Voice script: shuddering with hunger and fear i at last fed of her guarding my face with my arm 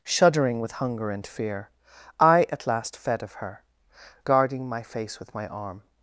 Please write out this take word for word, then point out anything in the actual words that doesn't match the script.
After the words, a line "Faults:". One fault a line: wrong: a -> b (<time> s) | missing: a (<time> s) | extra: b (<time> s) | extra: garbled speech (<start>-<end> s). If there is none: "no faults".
shuddering with hunger and fear i at last fed of her guarding my face with my arm
Faults:
no faults